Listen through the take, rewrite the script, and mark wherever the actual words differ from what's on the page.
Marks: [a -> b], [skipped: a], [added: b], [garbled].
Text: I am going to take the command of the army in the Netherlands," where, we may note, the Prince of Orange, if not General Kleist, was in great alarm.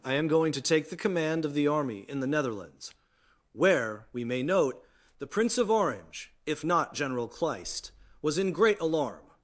I am going to take the command of the army in the Netherlands," where, we may note, the Prince of Orange, if not General Kleist, was in great alarm.